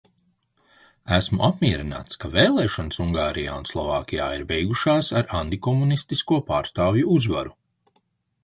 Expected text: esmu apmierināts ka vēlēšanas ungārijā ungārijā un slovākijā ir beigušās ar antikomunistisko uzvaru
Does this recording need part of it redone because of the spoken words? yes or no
yes